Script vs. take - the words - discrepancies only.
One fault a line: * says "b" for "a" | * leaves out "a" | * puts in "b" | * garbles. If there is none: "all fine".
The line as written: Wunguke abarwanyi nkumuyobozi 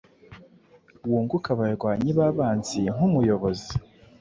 * puts in "babanzi"